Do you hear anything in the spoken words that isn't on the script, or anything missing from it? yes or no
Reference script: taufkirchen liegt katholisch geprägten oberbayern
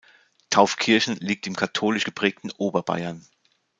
yes